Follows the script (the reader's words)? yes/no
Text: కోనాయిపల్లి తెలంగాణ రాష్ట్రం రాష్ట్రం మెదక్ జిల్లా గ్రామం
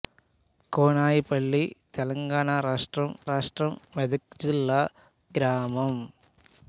yes